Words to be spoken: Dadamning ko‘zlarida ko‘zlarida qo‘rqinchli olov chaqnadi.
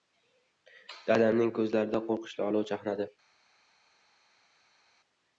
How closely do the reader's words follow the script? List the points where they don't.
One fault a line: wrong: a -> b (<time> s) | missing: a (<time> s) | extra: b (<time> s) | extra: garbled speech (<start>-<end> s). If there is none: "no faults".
missing: ko‘zlarida (2.0 s)